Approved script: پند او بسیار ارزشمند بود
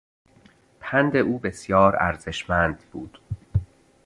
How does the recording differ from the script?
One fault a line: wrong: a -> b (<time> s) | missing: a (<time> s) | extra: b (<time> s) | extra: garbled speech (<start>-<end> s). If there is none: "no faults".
no faults